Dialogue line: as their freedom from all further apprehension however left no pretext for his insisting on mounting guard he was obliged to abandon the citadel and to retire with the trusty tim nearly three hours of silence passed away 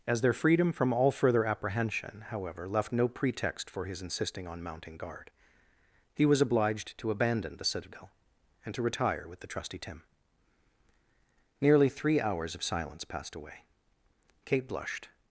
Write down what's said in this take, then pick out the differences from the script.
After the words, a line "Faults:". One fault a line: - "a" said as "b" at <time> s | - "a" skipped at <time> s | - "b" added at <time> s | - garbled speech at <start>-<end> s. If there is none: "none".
as their freedom from all further apprehension however left no pretext for his insisting on mounting guard he was obliged to abandon the citadel and to retire with the trusty tim nearly three hours of silence passed away kate blushed
Faults:
- "kate blushed" added at 14.4 s